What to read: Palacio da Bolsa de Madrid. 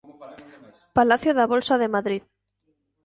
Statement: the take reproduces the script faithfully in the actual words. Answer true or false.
true